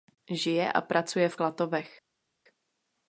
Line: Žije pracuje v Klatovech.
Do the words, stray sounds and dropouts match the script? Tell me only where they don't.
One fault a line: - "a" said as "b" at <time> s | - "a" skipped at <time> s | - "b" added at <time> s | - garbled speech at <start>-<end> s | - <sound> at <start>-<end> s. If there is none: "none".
- "a" added at 0.7 s